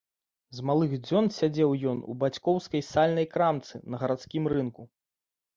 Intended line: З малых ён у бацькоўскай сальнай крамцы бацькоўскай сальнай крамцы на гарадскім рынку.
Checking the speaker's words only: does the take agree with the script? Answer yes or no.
no